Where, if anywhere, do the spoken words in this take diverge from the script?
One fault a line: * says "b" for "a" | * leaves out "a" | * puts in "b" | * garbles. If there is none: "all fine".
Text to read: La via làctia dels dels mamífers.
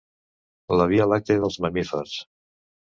* leaves out "dels"